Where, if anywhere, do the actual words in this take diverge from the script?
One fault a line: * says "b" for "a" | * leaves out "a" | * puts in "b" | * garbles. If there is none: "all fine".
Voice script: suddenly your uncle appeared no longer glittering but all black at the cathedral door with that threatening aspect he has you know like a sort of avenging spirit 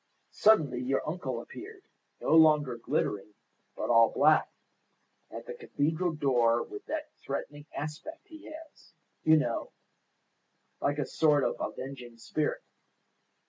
all fine